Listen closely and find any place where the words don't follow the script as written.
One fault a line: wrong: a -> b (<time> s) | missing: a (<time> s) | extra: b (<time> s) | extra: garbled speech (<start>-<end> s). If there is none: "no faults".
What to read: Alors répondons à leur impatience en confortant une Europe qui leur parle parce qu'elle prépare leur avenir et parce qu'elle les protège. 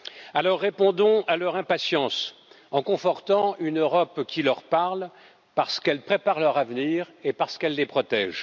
no faults